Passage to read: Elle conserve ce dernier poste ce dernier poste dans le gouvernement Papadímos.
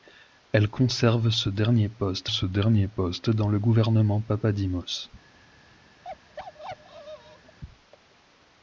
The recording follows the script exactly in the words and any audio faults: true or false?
false